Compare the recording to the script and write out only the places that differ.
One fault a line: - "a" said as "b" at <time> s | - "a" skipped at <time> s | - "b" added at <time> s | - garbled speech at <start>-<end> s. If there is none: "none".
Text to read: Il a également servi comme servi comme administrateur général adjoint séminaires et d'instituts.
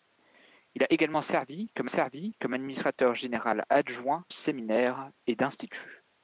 none